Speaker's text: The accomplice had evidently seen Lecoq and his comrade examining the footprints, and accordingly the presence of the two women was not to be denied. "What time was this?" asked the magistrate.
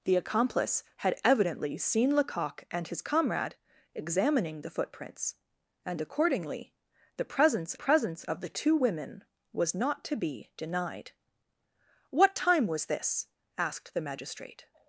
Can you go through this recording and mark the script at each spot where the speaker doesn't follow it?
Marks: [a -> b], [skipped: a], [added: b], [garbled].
The accomplice had evidently seen Lecoq and his comrade examining the footprints, and accordingly the presence [added: presence] of the two women was not to be denied. "What time was this?" asked the magistrate.